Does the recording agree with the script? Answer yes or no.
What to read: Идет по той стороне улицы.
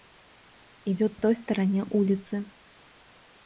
no